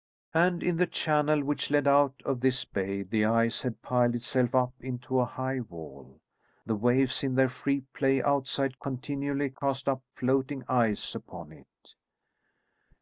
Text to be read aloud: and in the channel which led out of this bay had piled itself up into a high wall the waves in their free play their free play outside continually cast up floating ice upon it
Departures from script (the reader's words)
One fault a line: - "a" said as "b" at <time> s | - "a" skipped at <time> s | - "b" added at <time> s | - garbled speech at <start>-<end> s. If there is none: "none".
- "the ice" added at 3.0 s
- "their free play" skipped at 8.2 s